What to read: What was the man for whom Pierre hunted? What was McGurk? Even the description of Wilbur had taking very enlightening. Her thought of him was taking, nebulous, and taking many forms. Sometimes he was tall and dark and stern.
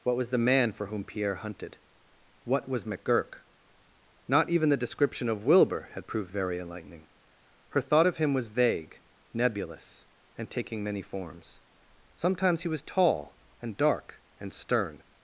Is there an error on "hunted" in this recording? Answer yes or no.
no